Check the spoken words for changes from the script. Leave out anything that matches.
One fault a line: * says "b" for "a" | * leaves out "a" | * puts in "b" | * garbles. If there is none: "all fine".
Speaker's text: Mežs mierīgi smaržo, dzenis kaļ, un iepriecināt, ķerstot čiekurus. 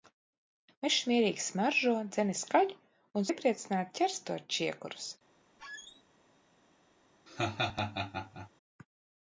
all fine